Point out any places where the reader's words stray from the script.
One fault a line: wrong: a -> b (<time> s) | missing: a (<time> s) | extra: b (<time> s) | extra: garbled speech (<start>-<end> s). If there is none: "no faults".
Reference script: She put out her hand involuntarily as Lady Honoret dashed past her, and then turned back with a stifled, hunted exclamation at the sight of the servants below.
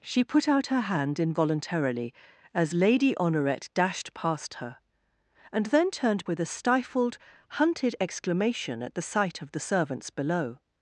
missing: back (6.2 s)